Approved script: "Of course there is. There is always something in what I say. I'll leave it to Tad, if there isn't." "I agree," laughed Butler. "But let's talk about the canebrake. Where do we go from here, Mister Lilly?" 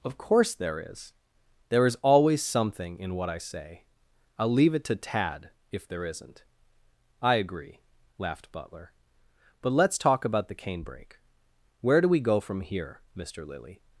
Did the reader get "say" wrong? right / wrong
right